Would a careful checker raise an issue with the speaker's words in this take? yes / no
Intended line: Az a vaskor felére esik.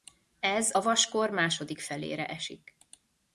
yes